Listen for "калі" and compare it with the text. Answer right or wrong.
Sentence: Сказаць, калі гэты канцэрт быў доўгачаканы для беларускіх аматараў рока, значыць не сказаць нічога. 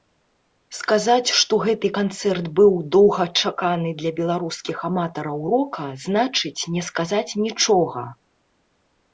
wrong